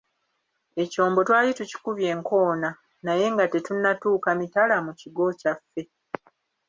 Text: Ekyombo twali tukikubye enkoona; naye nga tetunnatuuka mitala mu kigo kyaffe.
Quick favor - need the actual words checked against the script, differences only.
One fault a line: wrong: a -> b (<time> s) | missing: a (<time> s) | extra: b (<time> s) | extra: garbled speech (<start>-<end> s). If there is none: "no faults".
no faults